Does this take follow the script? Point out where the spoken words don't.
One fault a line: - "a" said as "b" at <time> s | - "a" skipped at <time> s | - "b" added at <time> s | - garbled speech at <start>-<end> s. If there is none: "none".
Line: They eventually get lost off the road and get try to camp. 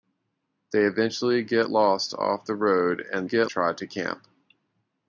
none